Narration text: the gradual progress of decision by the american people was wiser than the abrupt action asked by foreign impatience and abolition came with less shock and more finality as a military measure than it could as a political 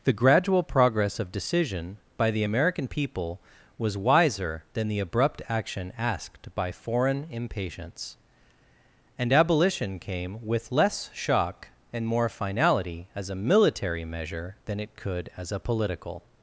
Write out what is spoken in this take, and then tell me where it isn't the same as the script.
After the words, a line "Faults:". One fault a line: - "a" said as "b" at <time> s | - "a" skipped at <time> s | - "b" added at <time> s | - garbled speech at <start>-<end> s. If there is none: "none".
the gradual progress of decision by the american people was wiser than the abrupt action asked by foreign impatience and abolition came with less shock and more finality as a military measure than it could as a political
Faults:
none